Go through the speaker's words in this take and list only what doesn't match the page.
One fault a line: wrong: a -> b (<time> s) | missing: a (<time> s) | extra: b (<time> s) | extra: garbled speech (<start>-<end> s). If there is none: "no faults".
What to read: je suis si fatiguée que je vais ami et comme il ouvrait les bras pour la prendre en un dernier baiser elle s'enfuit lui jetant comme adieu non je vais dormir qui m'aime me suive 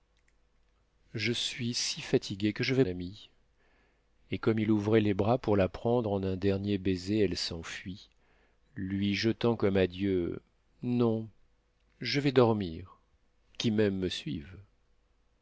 no faults